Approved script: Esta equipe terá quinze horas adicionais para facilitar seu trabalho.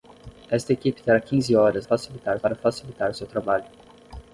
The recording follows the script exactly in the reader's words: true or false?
false